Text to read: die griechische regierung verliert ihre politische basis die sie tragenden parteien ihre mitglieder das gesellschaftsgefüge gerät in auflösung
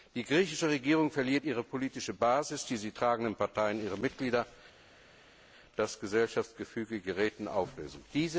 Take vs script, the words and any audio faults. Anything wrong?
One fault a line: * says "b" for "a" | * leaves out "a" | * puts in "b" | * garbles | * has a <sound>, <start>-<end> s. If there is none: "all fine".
all fine